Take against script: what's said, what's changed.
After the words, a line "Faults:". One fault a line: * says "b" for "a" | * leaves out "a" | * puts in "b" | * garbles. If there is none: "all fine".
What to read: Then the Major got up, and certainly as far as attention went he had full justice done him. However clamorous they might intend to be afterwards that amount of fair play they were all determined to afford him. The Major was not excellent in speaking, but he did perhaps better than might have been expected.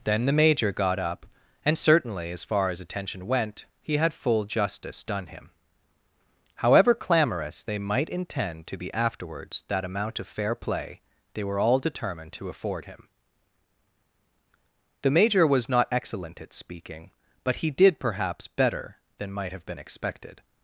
Then the Major got up, and certainly as far as attention went he had full justice done him. However clamorous they might intend to be afterwards that amount of fair play they were all determined to afford him. The Major was not excellent at speaking, but he did perhaps better than might have been expected.
Faults:
* says "at" for "in"